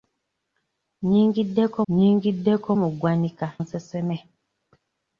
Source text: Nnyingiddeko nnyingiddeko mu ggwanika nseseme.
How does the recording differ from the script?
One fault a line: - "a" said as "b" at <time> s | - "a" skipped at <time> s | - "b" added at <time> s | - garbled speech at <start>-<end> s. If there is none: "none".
none